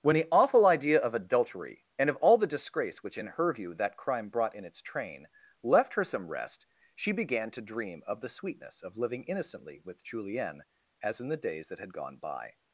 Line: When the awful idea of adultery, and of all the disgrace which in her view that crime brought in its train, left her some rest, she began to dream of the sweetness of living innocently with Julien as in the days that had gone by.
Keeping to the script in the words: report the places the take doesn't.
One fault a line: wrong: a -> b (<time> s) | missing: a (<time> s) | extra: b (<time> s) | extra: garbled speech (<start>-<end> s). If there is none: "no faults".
no faults